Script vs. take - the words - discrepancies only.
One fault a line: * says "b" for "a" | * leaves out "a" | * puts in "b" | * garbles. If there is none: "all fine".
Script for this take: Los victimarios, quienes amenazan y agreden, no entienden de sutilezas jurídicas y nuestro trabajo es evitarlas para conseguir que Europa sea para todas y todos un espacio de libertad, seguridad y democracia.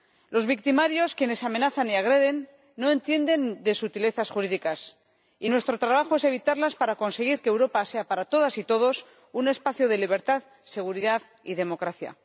all fine